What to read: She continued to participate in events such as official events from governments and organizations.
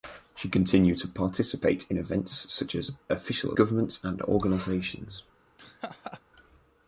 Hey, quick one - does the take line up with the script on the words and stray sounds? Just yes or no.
no